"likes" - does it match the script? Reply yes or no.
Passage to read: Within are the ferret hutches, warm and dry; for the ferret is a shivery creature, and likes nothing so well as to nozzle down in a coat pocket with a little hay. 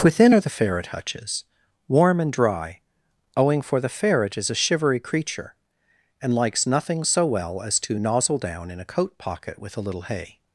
yes